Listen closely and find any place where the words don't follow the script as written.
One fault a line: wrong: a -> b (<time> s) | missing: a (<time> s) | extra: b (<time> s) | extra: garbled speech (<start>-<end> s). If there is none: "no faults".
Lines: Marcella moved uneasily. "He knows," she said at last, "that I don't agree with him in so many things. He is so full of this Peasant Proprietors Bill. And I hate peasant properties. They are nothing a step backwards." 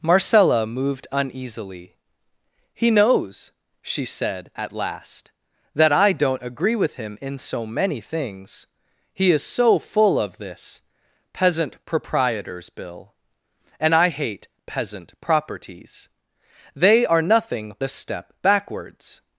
no faults